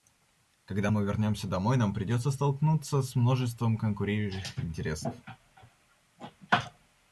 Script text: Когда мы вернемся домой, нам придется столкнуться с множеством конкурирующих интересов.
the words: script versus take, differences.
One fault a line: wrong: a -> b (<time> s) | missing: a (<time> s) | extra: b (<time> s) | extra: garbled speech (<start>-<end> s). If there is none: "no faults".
no faults